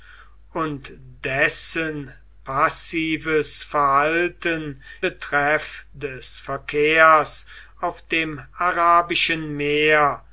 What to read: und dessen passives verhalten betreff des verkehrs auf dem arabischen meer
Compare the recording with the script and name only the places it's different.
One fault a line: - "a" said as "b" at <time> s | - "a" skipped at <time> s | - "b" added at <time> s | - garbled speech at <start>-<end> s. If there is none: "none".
none